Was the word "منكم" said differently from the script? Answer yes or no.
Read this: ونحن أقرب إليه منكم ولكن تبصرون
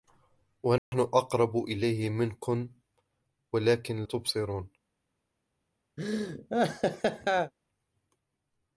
no